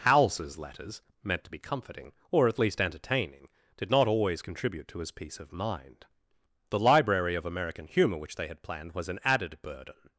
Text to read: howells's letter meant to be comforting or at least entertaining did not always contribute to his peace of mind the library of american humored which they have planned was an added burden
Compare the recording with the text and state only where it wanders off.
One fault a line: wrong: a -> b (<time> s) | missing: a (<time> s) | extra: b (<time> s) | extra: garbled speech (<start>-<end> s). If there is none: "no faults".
wrong: letter -> letters (0.6 s)
wrong: humored -> humor (7.9 s)
wrong: have -> had (8.5 s)